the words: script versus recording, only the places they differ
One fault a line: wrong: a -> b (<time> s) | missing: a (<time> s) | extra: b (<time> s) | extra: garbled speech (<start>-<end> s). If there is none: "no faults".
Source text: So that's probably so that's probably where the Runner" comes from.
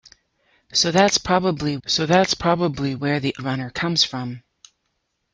no faults